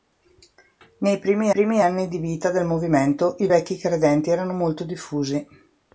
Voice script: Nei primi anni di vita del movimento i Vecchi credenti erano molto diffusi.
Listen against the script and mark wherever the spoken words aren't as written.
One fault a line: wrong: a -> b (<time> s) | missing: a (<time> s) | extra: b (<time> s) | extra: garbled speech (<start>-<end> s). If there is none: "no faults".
extra: primi (1.5 s)